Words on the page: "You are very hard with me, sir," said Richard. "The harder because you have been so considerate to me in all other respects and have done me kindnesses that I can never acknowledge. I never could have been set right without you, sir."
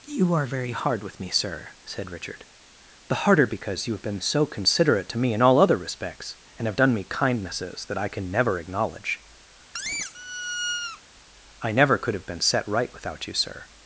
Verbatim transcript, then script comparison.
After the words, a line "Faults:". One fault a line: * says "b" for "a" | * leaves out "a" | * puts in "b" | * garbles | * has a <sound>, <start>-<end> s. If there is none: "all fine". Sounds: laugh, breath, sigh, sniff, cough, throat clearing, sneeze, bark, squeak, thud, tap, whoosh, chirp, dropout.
"You are very hard with me, sir," said Richard. "The harder because you have been so considerate to me in all other respects and have done me kindnesses that I can never acknowledge. I never could have been set right without you, sir."
Faults:
* has a squeak, 9.7-11.0 s